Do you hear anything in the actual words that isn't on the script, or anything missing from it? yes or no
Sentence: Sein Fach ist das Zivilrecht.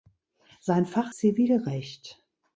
yes